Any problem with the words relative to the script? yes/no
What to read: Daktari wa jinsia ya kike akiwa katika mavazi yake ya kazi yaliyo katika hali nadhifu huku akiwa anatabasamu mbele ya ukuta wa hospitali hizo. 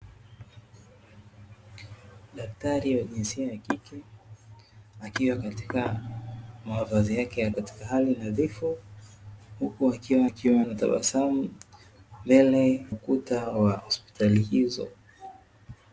yes